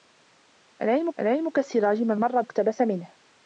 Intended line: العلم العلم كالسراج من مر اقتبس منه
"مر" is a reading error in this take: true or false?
false